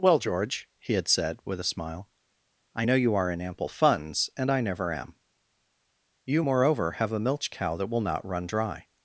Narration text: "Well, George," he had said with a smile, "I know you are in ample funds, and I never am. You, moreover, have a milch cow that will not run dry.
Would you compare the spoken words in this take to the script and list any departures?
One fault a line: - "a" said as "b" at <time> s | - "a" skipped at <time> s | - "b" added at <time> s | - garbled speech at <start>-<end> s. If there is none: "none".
none